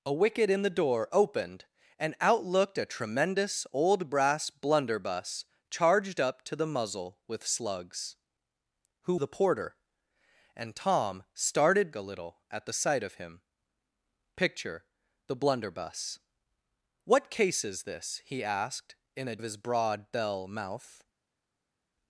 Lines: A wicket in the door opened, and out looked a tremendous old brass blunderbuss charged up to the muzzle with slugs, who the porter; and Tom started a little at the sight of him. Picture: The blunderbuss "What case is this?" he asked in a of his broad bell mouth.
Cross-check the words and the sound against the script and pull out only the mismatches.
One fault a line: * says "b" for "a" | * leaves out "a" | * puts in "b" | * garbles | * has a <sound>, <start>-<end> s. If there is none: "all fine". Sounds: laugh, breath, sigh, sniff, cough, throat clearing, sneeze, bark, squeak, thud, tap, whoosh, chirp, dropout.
all fine